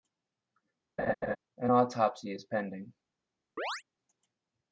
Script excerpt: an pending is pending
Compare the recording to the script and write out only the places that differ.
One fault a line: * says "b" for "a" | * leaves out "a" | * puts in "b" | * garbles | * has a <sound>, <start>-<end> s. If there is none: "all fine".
* has a laugh, 1.0-1.4 s
* says "autopsy" for "pending"
* has a chirp, 3.6-3.8 s